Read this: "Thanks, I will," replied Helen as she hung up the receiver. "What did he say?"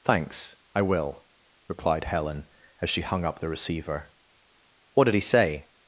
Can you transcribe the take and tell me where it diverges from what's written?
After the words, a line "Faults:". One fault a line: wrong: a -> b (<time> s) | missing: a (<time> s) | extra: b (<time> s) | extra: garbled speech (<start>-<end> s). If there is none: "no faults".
"Thanks, I will," replied Helen as she hung up the receiver. "What did he say?"
Faults:
no faults